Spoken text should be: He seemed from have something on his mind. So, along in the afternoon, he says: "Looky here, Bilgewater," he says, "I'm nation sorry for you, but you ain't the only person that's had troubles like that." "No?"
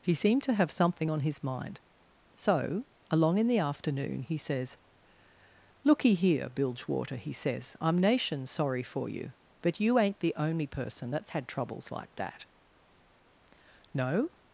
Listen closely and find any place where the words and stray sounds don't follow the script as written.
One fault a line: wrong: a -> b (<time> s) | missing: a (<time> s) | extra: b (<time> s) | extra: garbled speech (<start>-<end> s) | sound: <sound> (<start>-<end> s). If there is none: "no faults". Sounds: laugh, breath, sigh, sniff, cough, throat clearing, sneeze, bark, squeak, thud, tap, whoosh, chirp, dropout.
wrong: from -> to (0.4 s)